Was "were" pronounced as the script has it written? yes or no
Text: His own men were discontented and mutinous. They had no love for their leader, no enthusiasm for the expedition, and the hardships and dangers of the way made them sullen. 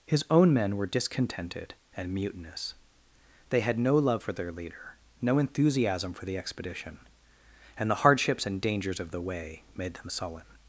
yes